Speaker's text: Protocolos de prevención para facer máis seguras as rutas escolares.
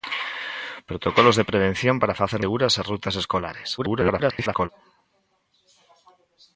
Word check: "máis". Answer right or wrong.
wrong